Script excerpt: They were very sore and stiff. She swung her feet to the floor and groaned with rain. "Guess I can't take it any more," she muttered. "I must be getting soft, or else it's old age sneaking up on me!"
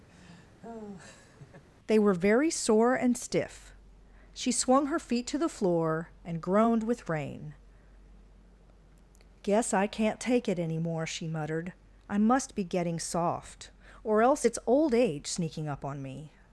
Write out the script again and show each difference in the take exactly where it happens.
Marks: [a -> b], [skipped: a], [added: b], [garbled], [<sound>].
[laugh] They were very sore and stiff. She swung her feet to the floor and groaned with rain. "Guess I can't take it any more," she muttered. "I must be getting soft, or else it's old age sneaking up on me!"